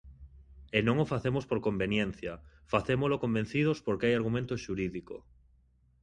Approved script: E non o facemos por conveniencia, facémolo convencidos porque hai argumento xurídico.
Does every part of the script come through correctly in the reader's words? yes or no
yes